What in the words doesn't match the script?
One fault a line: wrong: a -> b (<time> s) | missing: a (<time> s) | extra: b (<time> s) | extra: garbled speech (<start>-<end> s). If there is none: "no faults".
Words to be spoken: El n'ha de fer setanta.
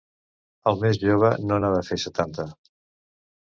extra: més jove no (0.8 s)